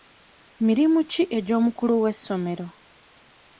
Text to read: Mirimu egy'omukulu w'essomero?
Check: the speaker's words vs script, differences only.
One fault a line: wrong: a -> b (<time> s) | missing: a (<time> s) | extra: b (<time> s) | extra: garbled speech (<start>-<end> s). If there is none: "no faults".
extra: ki (1.1 s)